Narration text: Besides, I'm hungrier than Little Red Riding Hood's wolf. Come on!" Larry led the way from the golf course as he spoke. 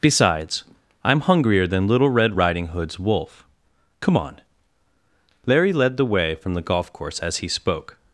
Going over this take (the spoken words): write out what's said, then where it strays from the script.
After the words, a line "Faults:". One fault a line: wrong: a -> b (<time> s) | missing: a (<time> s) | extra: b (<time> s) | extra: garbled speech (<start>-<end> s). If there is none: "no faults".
Besides, I'm hungrier than Little Red Riding Hood's wolf. Come on!" Larry led the way from the golf course as he spoke.
Faults:
no faults